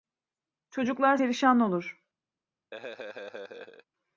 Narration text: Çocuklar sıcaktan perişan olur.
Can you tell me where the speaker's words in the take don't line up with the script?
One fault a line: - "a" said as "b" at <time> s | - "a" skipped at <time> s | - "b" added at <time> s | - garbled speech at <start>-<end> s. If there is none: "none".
- "sıcaktan" skipped at 1.2 s